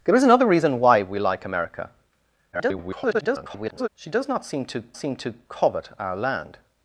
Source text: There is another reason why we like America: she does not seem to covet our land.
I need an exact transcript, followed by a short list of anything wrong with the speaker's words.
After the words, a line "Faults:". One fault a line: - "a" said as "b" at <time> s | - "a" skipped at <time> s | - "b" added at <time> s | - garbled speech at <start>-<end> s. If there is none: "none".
There is another reason why we like America: [garbled] she does not seem to seem to covet our land.
Faults:
- garbled speech at 2.5-3.9 s
- "seem to" added at 5.0 s